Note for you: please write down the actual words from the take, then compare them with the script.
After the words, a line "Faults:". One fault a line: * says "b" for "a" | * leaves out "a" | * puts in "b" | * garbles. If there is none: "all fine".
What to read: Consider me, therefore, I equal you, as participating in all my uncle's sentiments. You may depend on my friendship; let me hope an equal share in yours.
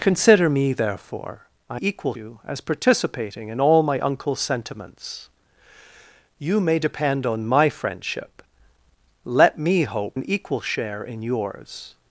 Consider me, therefore, I equal you, as participating in all my uncle's sentiments. You may depend on my friendship; let me hope an equal share in yours.
Faults:
all fine